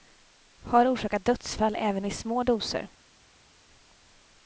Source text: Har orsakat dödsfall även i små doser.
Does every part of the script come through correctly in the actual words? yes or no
yes